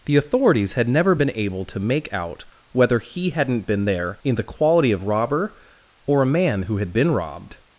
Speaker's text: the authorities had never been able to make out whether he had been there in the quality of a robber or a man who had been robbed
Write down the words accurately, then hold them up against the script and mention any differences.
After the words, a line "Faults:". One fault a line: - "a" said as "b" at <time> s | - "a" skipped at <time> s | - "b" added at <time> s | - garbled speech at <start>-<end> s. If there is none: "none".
the authorities had never been able to make out whether he hadn't been there in the quality of robber or a man who had been robbed
Faults:
- "had" said as "hadn't" at 3.3 s
- "a" skipped at 5.1 s